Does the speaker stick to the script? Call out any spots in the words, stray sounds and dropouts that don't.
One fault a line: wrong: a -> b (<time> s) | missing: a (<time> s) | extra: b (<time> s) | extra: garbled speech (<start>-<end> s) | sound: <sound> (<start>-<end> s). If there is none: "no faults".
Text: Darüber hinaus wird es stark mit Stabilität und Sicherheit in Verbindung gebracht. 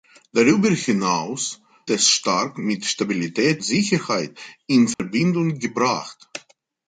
missing: wird (1.6 s)
missing: und (3.6 s)
sound: dropout (4.9-5.0 s)